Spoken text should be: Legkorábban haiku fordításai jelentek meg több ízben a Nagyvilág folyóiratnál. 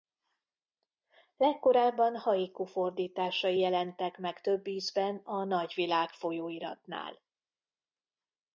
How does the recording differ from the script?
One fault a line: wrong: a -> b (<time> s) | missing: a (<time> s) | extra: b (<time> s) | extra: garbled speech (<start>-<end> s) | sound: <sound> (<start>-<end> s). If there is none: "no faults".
no faults